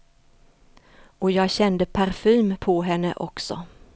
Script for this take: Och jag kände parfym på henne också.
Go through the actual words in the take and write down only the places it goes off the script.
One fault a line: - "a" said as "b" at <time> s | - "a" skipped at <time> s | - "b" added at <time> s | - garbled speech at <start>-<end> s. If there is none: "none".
none